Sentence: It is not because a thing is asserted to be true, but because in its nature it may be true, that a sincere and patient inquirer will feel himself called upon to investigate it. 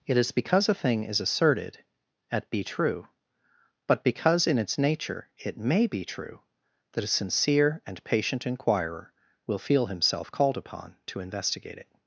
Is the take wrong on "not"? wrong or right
wrong